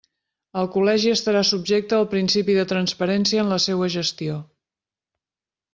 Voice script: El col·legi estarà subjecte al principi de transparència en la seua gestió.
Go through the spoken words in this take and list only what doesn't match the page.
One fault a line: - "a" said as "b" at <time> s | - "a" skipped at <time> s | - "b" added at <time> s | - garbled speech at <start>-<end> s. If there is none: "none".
none